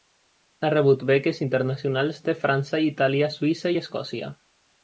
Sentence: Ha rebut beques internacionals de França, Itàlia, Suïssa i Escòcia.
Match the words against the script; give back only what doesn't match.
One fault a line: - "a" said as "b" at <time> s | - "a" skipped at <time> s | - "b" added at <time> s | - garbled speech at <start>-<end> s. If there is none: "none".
none